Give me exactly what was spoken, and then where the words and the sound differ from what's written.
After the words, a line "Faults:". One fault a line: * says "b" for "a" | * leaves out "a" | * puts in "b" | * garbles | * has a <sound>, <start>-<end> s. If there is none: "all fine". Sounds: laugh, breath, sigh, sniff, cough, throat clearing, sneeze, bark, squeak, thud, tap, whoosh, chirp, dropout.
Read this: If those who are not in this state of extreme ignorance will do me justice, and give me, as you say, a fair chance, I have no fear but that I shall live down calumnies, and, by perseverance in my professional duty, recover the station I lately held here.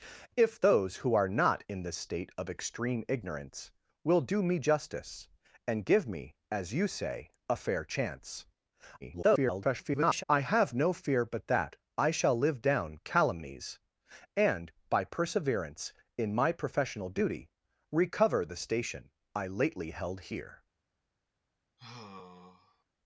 If those who are not in this state of extreme ignorance will do me justice, and give me, as you say, a fair chance, [garbled] I have no fear but that I shall live down calumnies, and, by perseverance in my professional duty, recover the station I lately held here.
Faults:
* garbles
* has a sigh, 21.8-22.8 s